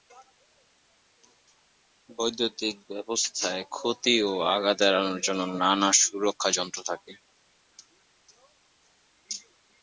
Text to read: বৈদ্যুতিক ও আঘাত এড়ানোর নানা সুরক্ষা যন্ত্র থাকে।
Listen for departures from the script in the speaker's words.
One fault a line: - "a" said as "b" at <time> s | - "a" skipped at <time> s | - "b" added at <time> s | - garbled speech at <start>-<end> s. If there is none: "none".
- "ব্যবস্থায় ক্ষতি" added at 2.9 s
- "জন্য" added at 5.3 s